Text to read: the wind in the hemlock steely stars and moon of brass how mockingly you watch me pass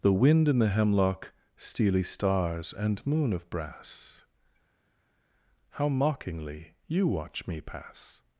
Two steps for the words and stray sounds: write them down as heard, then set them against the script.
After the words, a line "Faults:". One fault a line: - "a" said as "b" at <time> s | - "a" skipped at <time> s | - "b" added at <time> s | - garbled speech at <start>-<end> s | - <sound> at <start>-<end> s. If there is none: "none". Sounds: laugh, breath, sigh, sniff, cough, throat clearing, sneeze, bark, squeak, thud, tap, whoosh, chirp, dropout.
the wind in the hemlock steely stars and moon of brass how mockingly you watch me pass
Faults:
none